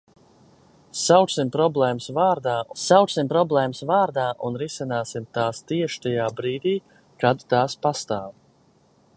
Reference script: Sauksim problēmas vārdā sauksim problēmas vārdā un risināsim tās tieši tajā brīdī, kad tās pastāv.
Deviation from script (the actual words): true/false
false